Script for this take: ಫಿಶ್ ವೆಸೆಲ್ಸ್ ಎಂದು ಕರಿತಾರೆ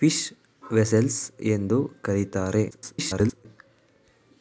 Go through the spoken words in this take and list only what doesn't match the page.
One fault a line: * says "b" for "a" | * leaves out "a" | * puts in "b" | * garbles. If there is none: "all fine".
* garbles